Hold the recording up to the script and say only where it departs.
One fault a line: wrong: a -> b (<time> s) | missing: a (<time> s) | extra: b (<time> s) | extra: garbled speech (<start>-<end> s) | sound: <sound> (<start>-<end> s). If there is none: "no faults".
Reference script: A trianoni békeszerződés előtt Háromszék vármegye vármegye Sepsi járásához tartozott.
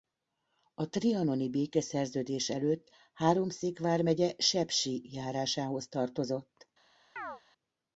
missing: vármegye (4.3 s)
sound: chirp (7.2-7.4 s)